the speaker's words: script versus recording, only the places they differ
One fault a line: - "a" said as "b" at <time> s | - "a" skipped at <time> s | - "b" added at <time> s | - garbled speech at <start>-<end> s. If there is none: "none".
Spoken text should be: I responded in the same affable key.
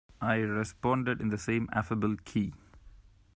none